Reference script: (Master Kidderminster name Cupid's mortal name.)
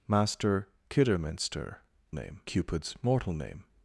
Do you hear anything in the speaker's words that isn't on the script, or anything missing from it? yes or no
no